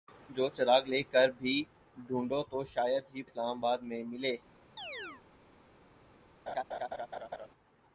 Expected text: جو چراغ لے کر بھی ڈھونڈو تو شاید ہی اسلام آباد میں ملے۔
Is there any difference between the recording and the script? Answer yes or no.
no